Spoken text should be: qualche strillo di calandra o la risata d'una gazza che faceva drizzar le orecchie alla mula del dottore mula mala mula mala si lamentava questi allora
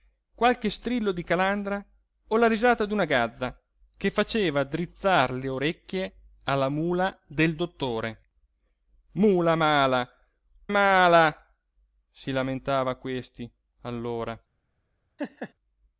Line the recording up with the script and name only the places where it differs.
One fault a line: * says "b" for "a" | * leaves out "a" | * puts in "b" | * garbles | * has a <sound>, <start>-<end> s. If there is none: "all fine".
* leaves out "mula"
* has a laugh, 15.2-15.5 s